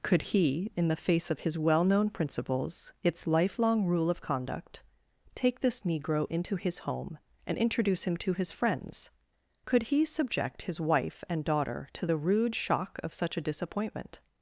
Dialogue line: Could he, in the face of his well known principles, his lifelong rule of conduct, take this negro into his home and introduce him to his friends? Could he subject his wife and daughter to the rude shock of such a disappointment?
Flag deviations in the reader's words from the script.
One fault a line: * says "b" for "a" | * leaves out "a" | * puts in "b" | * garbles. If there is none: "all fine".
* says "its" for "his"